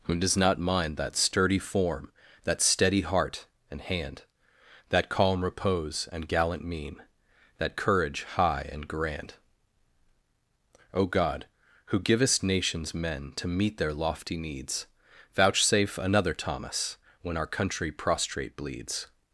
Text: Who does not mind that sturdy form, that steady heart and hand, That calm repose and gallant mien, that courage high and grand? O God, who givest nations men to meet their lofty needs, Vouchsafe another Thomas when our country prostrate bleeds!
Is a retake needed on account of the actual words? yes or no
no